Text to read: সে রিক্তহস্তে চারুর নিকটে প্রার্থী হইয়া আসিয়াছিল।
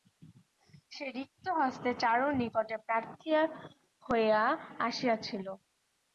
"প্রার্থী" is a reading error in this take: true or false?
false